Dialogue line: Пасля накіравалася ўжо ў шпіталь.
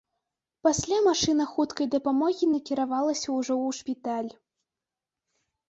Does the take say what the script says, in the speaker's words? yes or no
no